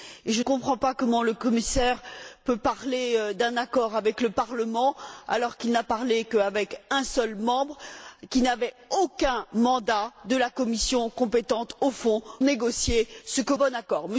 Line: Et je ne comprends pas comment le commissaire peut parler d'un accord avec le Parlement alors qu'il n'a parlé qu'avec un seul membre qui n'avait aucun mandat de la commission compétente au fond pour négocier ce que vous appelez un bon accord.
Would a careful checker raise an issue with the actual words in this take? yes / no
yes